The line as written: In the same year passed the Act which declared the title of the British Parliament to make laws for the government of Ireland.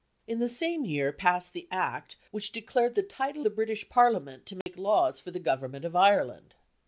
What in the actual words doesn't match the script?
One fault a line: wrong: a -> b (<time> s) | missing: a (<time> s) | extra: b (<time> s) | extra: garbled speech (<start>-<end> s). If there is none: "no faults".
missing: of (3.5 s)